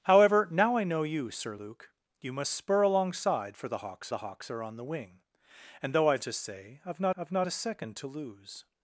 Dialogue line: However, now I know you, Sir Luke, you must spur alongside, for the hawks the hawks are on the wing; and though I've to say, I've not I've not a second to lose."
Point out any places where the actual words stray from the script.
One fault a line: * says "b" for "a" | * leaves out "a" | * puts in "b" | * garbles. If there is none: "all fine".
all fine